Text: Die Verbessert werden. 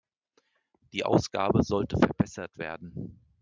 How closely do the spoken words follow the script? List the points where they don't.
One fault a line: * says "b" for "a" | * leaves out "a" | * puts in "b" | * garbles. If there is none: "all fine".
* puts in "Ausgabe sollte"